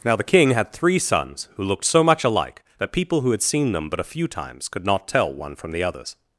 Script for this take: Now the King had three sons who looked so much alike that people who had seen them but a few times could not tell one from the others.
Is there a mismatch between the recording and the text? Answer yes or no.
no